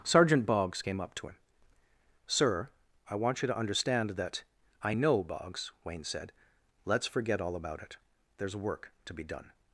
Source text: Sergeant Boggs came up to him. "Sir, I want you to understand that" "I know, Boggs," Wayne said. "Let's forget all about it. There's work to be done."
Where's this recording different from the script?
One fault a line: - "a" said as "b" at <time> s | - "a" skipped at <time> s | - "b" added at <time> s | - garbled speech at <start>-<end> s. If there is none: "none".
none